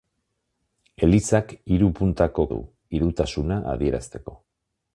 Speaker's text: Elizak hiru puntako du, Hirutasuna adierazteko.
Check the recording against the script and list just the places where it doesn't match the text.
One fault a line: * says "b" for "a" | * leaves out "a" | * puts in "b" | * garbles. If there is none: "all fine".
all fine